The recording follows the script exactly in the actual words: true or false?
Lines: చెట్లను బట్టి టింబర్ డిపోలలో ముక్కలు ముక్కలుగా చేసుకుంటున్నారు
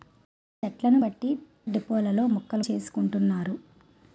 false